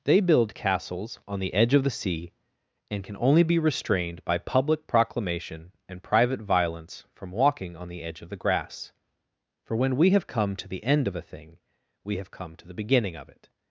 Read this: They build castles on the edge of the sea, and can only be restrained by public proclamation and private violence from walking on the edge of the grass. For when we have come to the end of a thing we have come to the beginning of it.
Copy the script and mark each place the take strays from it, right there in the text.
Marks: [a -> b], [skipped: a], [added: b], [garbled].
They build castles on the edge of the sea, and can only be restrained by public proclamation and private violence from walking on the edge of the grass. For when we have come to the end of a thing we have come to the beginning of it.